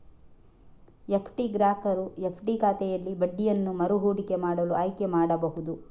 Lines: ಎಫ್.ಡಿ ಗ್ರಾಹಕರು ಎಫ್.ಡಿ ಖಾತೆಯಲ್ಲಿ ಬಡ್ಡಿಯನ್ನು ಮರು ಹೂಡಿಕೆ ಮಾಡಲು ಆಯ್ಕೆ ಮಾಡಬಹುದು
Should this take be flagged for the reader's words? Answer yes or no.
no